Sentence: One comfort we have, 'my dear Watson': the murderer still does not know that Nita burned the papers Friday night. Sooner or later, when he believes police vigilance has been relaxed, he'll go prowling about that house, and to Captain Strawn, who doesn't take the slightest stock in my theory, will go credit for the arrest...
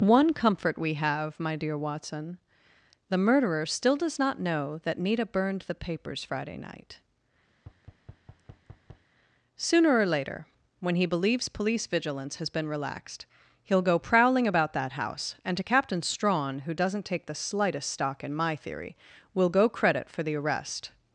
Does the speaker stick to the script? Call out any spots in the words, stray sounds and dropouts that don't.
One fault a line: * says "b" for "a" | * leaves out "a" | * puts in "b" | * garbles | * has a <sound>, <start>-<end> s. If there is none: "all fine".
* has a thud, 7.6-9.1 s